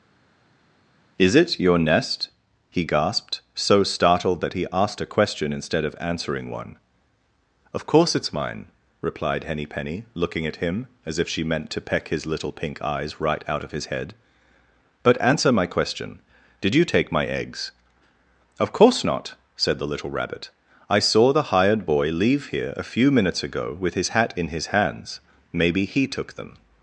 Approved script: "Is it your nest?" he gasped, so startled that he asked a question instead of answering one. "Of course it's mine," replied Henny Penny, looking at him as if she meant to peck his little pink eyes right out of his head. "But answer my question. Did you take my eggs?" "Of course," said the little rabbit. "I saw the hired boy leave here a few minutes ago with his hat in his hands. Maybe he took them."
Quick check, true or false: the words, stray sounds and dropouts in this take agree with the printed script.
false